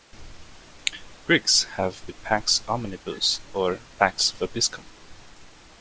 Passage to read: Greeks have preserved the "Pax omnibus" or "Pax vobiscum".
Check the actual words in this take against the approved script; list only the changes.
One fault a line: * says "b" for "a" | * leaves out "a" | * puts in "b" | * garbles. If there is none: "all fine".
* leaves out "preserved"